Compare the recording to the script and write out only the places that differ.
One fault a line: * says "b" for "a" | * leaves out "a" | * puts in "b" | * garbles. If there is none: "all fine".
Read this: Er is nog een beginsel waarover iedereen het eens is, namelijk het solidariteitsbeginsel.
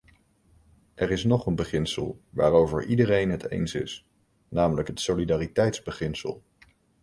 all fine